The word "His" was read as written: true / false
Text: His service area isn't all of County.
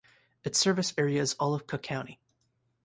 false